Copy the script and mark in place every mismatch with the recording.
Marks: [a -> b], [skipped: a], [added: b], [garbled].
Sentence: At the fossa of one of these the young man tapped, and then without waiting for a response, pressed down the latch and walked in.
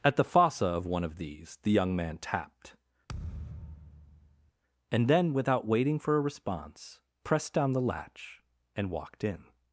At the fossa of one of these the young man tapped, and then without waiting for a response, pressed down the latch and walked in.